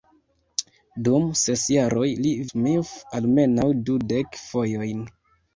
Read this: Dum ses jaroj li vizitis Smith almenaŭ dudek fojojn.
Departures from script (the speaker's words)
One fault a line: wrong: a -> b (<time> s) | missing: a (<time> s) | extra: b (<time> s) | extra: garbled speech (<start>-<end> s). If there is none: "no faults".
missing: vizitis (2.3 s)